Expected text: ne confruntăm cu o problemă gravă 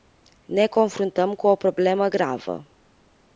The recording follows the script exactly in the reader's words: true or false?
true